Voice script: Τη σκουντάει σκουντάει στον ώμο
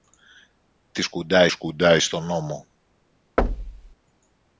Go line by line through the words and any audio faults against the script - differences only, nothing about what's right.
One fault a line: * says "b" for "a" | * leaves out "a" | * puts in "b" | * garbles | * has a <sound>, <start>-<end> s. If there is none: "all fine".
* has a thud, 3.4-3.9 s